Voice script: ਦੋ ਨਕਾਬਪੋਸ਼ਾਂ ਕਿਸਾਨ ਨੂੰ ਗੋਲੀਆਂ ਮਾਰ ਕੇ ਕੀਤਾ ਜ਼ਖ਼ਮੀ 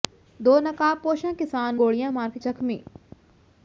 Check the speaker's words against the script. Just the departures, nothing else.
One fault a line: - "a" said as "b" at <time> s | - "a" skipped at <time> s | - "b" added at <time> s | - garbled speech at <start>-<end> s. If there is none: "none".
- "ਨੂੰ" skipped at 1.8 s
- "ਕੀਤਾ" skipped at 2.4 s